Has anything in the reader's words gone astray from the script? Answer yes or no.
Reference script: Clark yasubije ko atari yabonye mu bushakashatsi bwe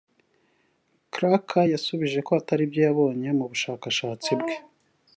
yes